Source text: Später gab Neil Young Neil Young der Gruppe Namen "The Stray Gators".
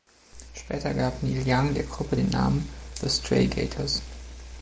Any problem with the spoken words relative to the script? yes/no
yes